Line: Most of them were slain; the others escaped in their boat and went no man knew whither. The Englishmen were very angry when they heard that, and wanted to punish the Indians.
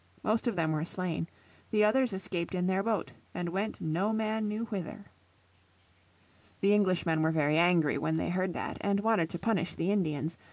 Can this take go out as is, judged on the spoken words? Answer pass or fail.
pass